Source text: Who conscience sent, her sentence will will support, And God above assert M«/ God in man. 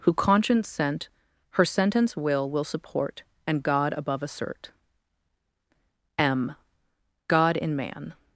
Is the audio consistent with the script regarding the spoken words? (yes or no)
yes